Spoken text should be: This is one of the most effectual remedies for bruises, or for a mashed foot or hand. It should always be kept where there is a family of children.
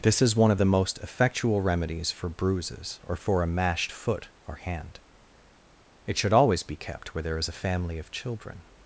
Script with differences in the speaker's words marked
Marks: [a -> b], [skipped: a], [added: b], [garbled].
This is one of the most effectual remedies for bruises, or for a mashed foot or hand. It should always be kept where there is a family of children.